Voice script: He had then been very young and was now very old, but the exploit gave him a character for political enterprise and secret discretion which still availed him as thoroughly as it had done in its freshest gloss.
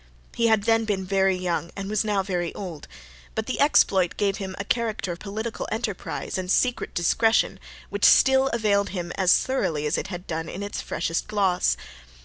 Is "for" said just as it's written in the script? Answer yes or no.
no